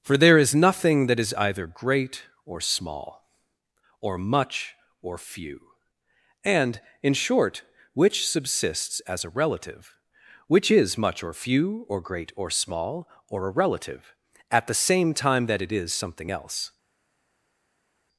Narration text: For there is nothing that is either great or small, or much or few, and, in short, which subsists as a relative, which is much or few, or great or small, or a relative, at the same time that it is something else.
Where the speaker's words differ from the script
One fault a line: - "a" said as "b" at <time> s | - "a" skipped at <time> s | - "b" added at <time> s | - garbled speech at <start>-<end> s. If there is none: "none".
none